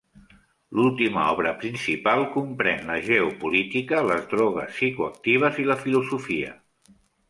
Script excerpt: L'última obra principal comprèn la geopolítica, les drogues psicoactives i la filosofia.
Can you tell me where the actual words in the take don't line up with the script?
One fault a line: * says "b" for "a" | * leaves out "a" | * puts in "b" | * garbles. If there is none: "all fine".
all fine